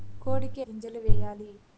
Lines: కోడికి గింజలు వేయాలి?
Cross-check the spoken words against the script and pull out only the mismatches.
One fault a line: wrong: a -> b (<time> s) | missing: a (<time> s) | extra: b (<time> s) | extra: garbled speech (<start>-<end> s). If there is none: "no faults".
no faults